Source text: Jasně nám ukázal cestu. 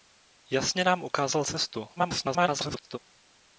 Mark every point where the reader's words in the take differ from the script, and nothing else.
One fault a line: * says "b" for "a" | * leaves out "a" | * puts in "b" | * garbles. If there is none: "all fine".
* garbles